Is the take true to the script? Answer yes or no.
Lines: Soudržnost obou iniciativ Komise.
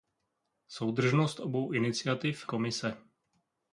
yes